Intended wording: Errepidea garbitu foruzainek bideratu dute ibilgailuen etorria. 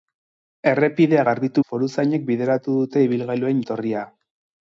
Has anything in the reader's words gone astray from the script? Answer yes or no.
no